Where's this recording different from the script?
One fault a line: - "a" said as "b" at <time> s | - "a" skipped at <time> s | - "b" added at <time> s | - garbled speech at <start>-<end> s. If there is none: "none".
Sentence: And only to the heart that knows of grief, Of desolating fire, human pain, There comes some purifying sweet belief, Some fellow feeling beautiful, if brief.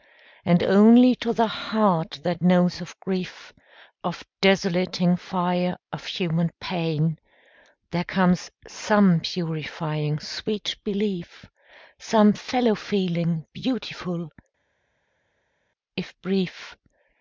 - "of" added at 5.9 s